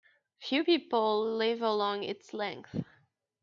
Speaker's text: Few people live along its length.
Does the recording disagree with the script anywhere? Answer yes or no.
no